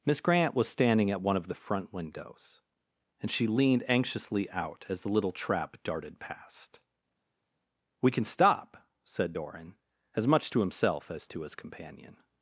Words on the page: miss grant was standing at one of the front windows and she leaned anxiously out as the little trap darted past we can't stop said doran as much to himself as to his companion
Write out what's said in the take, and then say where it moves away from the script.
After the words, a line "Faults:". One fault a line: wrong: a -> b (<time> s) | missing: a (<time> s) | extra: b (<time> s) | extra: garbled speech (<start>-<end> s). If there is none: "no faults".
miss grant was standing at one of the front windows and she leaned anxiously out as the little trap darted past we can stop said doran as much to himself as to his companion
Faults:
wrong: can't -> can (8.1 s)